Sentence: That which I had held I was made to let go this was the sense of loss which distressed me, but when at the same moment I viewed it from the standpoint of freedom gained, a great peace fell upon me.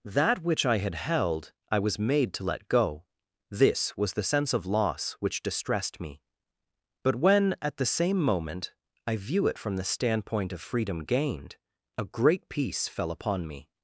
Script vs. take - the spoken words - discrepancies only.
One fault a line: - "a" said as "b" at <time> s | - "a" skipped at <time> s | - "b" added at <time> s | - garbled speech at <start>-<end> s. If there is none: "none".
- "viewed" said as "view" at 9.2 s